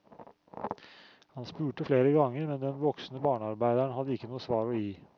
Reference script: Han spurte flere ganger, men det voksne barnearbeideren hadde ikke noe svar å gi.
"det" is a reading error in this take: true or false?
true